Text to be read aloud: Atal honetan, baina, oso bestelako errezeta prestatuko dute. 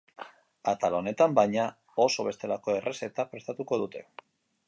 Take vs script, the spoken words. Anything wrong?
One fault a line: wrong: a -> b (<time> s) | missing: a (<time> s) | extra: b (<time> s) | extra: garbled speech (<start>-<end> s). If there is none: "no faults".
no faults